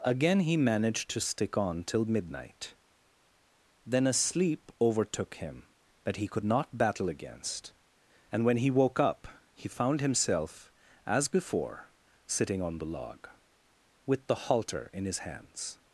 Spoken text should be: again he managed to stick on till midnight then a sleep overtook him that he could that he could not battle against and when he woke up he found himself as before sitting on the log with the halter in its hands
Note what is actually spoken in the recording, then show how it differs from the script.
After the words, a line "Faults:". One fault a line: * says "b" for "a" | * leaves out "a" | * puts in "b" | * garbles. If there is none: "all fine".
again he managed to stick on till midnight then a sleep overtook him that he could not battle against and when he woke up he found himself as before sitting on the log with the halter in his hands
Faults:
* leaves out "that he could"
* says "his" for "its"